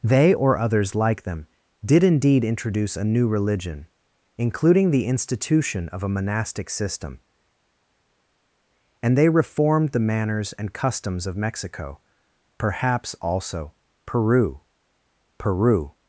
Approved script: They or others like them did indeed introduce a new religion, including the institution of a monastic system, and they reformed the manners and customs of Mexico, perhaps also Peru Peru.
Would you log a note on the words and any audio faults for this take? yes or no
no